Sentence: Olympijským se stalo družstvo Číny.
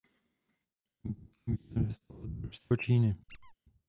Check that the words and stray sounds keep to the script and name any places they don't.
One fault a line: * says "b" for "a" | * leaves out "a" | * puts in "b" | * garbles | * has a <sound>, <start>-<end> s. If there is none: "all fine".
* puts in "vítězem"
* has a squeak, 3.3-3.5 s